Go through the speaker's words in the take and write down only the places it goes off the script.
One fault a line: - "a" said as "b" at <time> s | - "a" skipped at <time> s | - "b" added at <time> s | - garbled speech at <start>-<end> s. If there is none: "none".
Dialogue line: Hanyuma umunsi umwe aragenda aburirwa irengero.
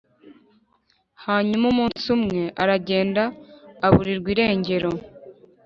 none